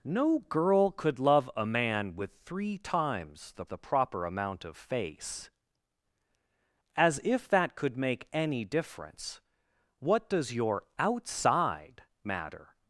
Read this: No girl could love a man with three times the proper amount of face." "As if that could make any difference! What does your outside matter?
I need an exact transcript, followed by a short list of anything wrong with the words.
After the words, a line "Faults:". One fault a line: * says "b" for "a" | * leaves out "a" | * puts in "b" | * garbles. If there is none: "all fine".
No girl could love a man with three times the the proper amount of face." "As if that could make any difference! What does your outside matter?
Faults:
* puts in "the"